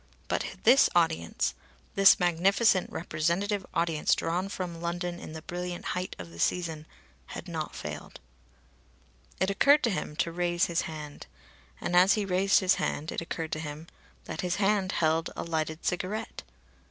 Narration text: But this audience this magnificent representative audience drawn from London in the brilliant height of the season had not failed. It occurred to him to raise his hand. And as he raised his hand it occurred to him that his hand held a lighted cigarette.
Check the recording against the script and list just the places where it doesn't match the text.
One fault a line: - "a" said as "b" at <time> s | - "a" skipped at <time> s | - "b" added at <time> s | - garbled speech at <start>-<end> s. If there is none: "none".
none